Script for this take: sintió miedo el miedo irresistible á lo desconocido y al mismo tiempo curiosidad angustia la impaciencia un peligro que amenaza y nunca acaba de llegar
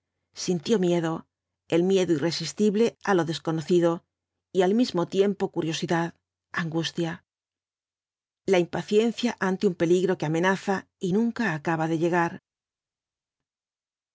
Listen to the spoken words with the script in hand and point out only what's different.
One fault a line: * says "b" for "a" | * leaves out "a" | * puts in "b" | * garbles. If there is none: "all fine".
* puts in "ante"